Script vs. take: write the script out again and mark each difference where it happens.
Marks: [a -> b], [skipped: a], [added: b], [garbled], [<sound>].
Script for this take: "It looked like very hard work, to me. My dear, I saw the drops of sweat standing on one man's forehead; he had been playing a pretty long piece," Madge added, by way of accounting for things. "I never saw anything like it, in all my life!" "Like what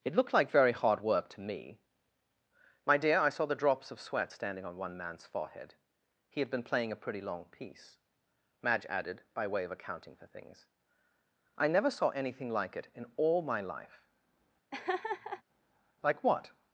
"It looked like very hard work, to me. My dear, I saw the drops of sweat standing on one man's forehead; he had been playing a pretty long piece," Madge added, by way of accounting for things. "I never saw anything like it, in all my life!" [laugh] "Like what